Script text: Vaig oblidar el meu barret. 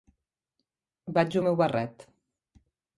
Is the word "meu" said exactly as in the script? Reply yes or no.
yes